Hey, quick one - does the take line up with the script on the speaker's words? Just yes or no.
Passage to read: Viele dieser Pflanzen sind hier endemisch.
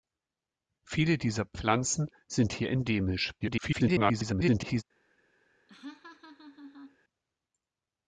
no